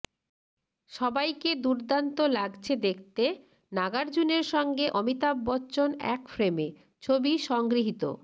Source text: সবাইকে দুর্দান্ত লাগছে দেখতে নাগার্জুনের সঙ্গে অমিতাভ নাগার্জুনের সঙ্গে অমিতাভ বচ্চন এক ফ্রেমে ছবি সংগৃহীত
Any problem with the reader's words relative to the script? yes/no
yes